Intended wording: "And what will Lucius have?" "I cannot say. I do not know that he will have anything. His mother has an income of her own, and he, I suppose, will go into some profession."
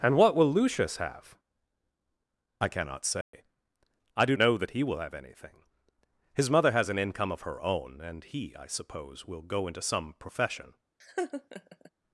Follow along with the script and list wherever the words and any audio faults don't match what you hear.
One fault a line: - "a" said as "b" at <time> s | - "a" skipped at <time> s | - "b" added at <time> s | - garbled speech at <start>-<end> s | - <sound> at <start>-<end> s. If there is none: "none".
- dropout at 3.2-3.3 s
- "not" skipped at 4.3 s
- laugh at 11.0-11.9 s